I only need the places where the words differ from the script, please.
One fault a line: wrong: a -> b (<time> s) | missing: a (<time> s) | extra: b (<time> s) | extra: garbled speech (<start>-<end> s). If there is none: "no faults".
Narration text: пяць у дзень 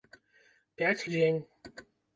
no faults